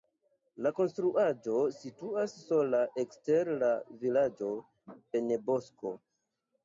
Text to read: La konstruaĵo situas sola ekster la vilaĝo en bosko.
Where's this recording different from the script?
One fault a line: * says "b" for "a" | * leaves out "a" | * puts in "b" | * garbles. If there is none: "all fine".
all fine